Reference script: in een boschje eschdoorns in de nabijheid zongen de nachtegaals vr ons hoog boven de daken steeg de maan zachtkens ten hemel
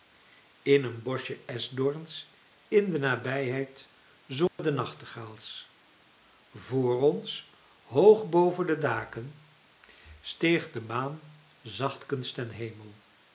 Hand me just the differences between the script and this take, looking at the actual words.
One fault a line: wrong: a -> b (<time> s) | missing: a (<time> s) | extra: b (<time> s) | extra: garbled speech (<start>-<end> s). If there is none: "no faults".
no faults